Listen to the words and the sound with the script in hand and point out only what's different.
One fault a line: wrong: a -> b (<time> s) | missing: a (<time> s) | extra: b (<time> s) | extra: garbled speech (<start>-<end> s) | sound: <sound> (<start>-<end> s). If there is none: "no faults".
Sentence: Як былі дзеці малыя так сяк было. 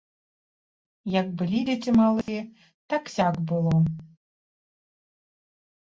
sound: dropout (2.2-2.3 s)